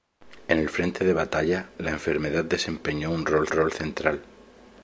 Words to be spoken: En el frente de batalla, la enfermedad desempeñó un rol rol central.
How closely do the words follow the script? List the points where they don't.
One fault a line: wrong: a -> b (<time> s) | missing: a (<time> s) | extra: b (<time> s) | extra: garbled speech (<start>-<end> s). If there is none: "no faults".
no faults